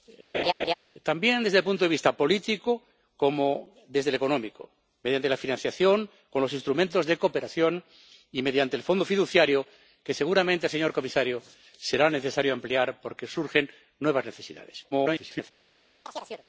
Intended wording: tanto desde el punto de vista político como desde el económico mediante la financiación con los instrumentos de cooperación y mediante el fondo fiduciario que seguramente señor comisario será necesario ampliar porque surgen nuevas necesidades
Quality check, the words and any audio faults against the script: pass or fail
fail